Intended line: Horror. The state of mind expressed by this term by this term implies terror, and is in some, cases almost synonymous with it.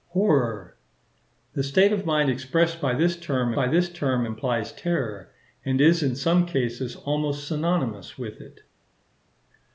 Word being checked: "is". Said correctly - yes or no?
yes